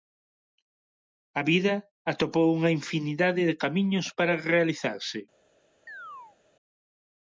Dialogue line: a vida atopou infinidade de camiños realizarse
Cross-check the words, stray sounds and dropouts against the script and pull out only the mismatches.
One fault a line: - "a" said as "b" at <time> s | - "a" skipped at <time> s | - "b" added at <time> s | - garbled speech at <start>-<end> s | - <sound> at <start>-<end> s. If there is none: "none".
- "unha" added at 2.6 s
- "para" added at 4.2 s
- chirp at 5.9-6.4 s